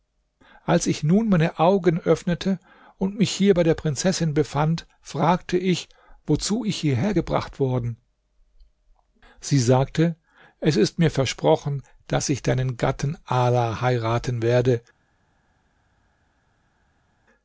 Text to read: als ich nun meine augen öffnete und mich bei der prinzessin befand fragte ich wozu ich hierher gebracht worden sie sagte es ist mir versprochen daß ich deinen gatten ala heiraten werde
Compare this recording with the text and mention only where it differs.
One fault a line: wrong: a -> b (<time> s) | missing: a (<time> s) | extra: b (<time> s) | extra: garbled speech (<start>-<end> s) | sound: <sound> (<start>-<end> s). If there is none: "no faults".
extra: hier (3.3 s)